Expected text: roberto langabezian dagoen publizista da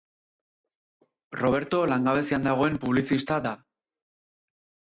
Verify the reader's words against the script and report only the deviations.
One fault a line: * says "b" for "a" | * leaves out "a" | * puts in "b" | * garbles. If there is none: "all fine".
all fine